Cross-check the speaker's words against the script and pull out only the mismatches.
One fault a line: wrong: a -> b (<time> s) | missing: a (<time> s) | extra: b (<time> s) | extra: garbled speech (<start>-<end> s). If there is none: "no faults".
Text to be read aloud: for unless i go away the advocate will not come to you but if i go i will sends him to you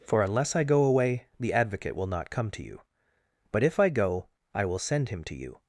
wrong: sends -> send (4.8 s)